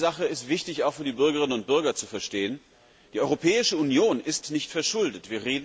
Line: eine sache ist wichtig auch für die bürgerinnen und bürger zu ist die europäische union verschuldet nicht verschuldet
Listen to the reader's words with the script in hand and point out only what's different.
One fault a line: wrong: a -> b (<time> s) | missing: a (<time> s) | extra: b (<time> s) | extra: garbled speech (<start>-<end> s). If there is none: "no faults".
wrong: ist -> verstehen (2.1 s)
wrong: verschuldet -> ist (4.2 s)